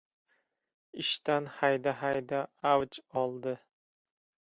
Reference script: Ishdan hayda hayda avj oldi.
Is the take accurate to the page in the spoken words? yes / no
yes